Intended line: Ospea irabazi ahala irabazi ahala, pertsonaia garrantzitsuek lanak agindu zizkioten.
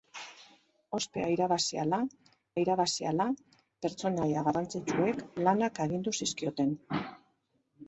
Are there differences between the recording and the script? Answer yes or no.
no